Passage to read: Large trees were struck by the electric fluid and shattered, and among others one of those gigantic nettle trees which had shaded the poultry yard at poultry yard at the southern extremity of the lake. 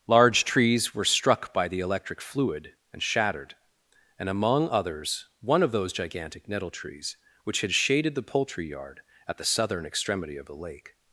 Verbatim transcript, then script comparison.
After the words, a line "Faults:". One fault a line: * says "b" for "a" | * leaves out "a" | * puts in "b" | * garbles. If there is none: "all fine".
Large trees were struck by the electric fluid and shattered, and among others one of those gigantic nettle trees which had shaded the poultry yard at the southern extremity of the lake.
Faults:
* leaves out "poultry yard at"